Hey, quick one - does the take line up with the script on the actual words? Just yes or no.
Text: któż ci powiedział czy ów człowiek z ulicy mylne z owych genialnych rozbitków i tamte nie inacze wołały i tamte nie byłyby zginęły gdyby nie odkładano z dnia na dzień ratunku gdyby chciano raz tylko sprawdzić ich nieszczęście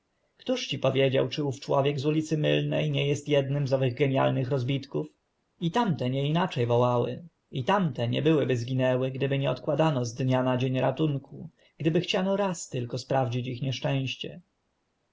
no